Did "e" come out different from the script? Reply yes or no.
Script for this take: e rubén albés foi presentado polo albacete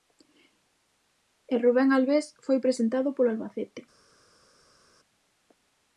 no